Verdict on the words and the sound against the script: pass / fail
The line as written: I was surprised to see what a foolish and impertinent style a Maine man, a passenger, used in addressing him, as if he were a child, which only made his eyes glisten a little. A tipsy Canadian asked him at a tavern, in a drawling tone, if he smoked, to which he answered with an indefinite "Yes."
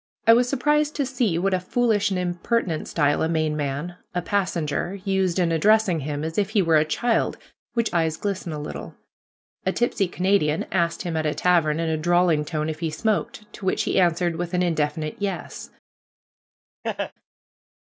fail